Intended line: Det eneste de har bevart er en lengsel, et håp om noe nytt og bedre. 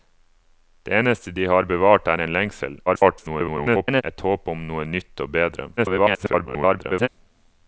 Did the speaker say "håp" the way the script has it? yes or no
yes